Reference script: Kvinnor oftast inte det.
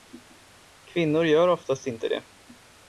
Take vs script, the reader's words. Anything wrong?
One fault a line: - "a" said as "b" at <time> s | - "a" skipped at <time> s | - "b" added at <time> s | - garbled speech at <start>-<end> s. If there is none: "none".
- "gör" added at 1.2 s